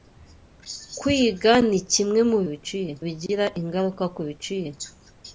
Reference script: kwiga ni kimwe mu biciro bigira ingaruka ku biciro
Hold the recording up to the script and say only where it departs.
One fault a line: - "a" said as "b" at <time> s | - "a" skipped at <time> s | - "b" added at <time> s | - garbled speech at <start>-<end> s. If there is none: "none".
none